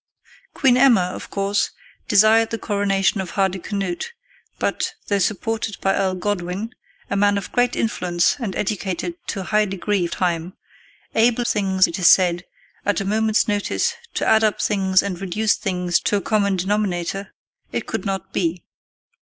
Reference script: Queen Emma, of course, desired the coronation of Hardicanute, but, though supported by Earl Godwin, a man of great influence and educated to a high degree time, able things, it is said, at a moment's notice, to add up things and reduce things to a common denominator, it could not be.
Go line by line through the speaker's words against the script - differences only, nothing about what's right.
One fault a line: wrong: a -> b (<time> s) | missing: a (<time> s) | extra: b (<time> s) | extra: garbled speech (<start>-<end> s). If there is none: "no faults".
no faults